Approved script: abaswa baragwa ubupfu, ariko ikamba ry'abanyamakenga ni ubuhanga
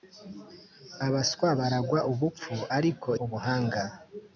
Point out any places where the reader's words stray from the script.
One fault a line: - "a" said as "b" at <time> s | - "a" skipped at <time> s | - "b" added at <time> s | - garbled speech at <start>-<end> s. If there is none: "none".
- "ikamba ry'abanyamakenga ni" skipped at 3.1 s